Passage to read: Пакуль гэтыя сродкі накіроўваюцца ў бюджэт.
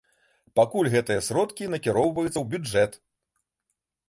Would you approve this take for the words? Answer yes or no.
yes